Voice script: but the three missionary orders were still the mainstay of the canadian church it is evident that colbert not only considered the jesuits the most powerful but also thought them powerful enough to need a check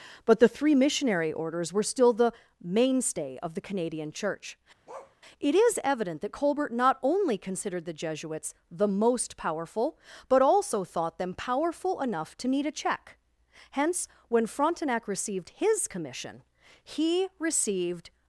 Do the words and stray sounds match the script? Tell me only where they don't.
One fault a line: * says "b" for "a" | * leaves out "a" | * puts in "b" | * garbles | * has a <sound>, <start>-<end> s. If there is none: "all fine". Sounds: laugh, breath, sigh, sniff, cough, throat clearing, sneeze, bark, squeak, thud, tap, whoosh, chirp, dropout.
* has a bark, 4.9-5.2 s
* puts in "hence when frontenac received his commission he received"